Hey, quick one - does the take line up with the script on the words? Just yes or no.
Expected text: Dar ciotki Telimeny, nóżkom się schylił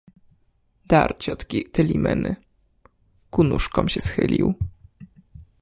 no